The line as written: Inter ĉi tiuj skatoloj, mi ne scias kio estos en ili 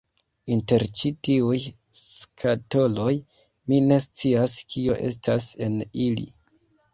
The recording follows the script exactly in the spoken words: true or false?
false